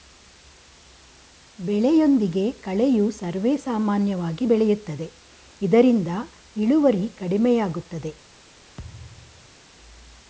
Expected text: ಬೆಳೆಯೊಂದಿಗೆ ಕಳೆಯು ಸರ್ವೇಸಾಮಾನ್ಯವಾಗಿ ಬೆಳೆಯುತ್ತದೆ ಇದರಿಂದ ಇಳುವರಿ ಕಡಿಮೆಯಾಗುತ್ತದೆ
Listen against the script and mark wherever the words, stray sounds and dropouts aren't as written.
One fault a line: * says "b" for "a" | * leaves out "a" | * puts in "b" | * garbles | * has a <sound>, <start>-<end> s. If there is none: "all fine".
* has a thud, 8.8-9.6 s